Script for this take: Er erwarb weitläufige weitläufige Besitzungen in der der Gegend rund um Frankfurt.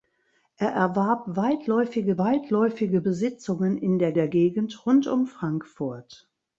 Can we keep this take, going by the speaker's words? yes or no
yes